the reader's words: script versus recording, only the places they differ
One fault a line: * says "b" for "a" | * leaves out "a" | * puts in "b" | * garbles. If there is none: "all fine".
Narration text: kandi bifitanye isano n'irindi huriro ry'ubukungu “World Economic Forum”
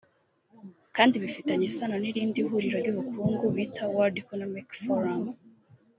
* puts in "bita"